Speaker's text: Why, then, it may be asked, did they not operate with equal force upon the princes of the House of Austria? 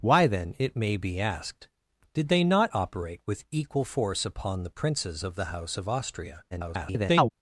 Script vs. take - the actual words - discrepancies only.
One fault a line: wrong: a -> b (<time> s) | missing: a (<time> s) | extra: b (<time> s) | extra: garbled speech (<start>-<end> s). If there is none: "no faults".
extra: garbled speech (6.5-7.3 s)